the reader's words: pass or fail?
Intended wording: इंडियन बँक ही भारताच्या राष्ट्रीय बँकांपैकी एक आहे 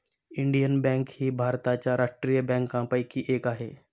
pass